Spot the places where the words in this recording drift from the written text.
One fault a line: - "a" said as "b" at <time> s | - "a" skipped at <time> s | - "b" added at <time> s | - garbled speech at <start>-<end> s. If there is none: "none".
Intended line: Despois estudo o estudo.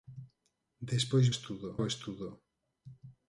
none